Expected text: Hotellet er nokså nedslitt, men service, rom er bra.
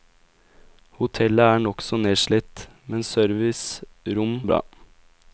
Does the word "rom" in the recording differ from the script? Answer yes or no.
no